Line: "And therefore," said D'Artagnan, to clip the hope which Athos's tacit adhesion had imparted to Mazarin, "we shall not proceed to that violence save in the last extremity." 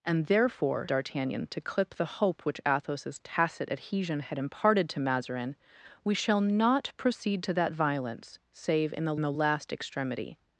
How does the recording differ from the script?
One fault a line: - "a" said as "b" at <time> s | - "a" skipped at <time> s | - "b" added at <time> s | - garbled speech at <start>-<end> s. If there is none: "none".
- "said" skipped at 0.9 s
- "the" added at 9.2 s